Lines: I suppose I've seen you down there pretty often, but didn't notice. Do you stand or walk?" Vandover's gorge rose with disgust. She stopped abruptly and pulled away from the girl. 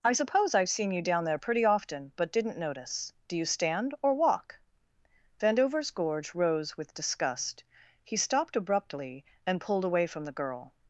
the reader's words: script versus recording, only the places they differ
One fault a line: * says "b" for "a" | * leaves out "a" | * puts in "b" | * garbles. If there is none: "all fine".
* says "He" for "She"